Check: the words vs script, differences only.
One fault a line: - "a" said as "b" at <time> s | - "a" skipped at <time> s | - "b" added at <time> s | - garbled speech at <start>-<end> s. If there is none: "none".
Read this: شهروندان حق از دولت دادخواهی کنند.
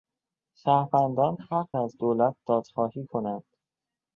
none